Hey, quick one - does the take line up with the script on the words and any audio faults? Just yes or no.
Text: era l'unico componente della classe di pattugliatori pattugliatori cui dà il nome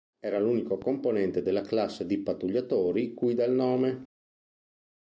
no